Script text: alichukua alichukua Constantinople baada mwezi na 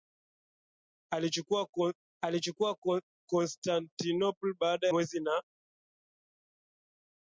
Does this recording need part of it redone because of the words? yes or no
no